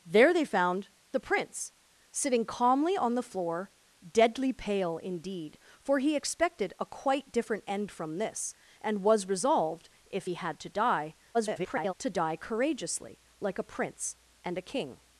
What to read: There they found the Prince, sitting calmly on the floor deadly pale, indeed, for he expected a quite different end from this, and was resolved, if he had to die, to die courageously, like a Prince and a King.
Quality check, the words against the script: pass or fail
fail